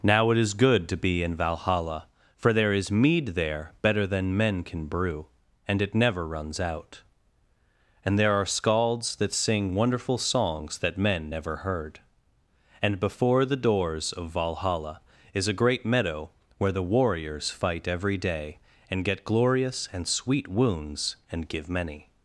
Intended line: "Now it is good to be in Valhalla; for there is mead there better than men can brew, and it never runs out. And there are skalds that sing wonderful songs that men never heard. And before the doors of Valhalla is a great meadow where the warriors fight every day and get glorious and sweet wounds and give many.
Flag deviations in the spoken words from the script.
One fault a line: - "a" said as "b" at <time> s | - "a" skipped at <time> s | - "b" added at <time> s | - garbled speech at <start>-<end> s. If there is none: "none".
none